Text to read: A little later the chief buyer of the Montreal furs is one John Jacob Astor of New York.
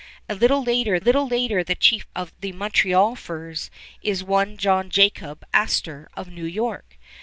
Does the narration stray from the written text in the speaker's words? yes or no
yes